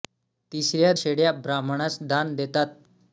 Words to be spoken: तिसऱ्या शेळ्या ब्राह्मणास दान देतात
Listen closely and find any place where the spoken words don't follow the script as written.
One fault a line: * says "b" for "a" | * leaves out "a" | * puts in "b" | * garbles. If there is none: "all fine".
all fine